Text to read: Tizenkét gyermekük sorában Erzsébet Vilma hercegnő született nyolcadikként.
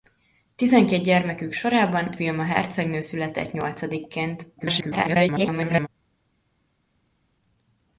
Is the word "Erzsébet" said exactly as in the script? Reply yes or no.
no